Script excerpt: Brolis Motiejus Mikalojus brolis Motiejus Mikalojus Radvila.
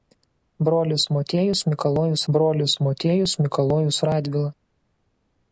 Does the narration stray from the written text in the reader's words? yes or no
no